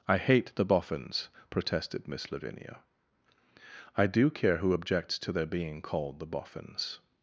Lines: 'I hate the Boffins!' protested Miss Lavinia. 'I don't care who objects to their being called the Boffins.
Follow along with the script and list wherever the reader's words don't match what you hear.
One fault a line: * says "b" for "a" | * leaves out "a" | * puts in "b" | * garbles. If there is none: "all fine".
* says "do" for "don't"